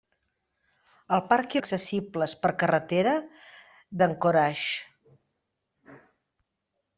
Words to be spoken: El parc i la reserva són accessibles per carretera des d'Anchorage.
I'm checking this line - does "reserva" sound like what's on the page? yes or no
no